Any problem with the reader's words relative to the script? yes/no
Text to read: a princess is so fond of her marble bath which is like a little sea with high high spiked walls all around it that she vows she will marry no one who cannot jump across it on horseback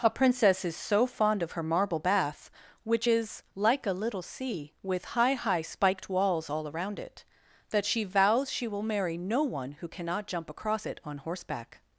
no